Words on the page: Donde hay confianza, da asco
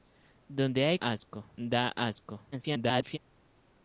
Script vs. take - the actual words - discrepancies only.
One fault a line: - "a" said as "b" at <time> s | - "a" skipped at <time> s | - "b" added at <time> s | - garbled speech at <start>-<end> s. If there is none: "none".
- "confianza" said as "asco" at 1.0 s
- garbled speech at 2.5-3.2 s